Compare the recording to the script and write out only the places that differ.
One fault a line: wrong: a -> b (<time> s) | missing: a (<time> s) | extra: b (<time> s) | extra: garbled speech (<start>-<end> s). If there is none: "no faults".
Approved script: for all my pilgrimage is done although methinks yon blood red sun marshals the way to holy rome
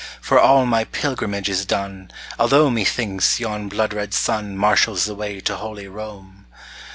no faults